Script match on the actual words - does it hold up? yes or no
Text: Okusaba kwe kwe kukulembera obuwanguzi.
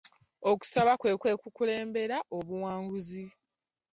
yes